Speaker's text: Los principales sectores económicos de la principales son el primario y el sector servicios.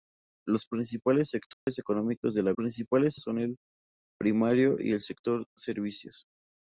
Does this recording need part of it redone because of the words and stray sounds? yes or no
yes